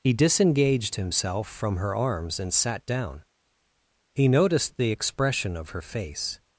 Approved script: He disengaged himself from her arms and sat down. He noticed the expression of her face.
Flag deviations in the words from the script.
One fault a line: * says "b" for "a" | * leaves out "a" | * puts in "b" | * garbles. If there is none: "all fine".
all fine